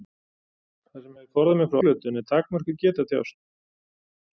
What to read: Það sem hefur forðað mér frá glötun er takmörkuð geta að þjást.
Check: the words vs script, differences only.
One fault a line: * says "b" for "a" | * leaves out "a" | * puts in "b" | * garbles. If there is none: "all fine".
all fine